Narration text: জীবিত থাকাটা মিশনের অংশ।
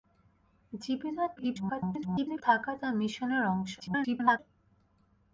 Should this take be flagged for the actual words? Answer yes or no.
yes